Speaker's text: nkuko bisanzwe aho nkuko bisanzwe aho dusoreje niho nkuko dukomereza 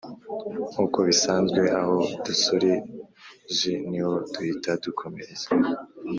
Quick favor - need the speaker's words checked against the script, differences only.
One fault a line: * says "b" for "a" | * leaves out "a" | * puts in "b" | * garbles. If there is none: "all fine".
* leaves out "nkuko bisanzwe aho"
* says "duhita" for "nkuko"